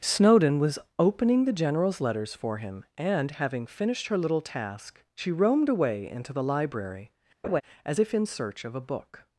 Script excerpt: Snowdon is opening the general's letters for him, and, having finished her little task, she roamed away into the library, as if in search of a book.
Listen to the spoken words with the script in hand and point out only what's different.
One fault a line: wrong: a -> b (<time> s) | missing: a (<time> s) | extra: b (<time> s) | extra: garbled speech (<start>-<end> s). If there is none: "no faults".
wrong: is -> was (0.6 s)